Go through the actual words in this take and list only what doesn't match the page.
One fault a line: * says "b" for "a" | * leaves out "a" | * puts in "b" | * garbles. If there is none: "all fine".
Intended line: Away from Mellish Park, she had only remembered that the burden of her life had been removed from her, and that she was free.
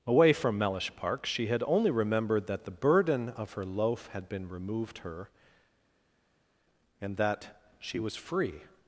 * says "loaf" for "life"
* leaves out "from"